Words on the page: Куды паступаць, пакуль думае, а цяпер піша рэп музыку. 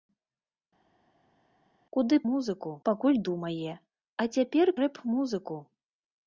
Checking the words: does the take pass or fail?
fail